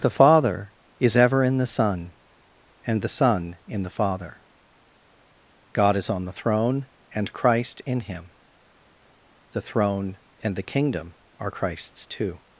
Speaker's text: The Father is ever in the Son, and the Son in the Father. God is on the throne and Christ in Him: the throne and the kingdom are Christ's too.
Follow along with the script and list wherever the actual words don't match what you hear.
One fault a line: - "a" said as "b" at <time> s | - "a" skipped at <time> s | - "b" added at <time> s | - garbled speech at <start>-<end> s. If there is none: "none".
none